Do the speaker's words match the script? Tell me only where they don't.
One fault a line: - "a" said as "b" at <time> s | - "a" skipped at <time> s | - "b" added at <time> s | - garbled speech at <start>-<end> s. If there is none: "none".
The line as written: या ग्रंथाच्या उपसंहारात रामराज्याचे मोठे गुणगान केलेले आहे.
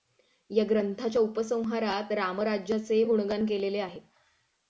- "मोठे" skipped at 3.0 s